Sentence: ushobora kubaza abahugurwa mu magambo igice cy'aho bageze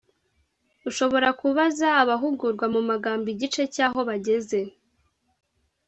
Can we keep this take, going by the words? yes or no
yes